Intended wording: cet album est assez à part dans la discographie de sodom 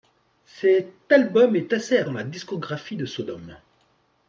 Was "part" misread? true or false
true